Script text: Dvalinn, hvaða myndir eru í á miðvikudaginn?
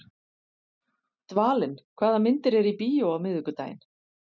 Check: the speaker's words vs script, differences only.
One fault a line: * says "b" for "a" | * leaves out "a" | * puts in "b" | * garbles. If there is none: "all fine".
* puts in "bíó"